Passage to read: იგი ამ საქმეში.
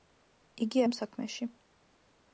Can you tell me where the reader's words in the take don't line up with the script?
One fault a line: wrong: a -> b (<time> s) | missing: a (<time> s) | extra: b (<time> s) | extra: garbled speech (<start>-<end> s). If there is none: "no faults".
no faults